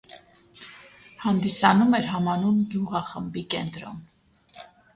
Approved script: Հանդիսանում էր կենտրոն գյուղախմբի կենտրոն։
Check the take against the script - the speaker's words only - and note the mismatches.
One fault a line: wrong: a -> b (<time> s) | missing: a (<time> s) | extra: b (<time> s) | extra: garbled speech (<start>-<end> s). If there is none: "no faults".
wrong: կենտրոն -> համանուն (2.1 s)